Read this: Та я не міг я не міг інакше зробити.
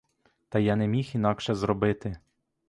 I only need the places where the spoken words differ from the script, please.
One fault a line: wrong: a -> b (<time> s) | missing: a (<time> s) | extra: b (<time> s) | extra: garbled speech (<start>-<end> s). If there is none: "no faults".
missing: я не міг (1.1 s)